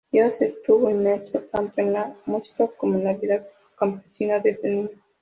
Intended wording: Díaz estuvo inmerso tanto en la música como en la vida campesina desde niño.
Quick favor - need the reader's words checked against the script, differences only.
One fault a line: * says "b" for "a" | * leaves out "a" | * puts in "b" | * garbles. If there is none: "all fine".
all fine